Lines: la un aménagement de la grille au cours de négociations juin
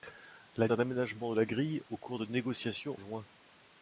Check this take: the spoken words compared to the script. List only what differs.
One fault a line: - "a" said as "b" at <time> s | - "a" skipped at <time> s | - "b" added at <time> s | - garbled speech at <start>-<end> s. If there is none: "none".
none